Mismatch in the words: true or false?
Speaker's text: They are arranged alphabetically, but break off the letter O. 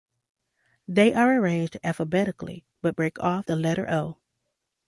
false